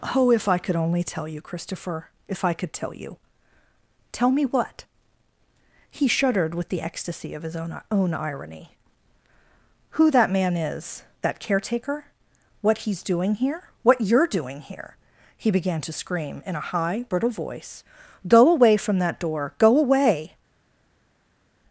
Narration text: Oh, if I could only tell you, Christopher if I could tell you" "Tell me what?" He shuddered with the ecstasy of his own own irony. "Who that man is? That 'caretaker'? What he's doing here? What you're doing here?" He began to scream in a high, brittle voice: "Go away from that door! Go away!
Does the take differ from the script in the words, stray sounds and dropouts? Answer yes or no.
no